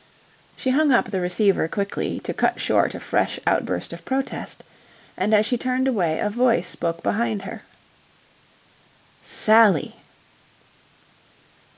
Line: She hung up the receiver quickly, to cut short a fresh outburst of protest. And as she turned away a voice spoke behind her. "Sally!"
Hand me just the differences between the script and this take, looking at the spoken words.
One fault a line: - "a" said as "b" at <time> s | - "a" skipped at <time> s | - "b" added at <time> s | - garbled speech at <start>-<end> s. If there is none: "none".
none